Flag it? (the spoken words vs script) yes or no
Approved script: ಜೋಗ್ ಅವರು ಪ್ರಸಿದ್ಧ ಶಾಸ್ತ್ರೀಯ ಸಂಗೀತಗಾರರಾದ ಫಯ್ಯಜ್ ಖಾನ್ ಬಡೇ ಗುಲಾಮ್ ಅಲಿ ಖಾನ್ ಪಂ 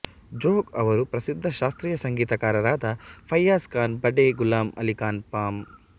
no